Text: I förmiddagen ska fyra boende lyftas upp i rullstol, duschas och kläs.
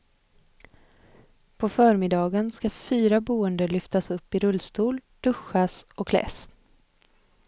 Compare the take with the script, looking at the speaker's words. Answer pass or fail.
fail